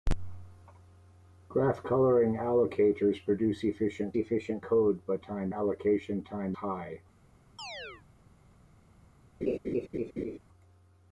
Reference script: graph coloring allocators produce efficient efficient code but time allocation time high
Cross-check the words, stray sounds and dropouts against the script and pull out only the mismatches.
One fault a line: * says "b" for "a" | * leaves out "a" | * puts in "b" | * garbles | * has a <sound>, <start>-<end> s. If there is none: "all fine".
* has a chirp, 7.6-8.0 s
* has a laugh, 9.4-10.4 s